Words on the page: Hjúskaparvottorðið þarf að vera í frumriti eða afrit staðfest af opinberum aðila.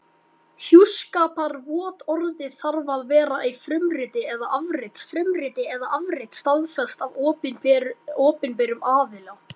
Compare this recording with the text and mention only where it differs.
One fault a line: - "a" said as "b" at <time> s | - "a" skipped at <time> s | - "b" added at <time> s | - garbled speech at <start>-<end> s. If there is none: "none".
- "frumriti eða afrit" added at 5.1 s